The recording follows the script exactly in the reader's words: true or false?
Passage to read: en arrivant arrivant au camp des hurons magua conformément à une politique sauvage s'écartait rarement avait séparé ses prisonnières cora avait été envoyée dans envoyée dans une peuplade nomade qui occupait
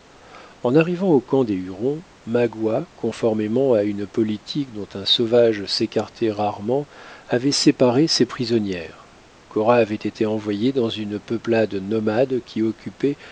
false